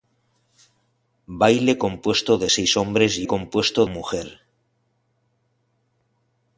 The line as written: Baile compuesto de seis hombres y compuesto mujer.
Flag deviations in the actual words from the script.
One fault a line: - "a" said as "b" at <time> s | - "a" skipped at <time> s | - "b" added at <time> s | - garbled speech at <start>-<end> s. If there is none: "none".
none